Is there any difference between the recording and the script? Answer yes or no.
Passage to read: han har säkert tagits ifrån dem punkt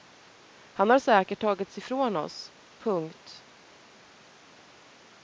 yes